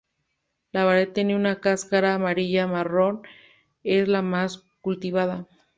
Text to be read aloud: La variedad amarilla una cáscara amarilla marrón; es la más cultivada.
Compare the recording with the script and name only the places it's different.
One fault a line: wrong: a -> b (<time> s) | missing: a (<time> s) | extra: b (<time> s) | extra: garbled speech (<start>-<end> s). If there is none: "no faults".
wrong: amarilla -> tiene (1.1 s)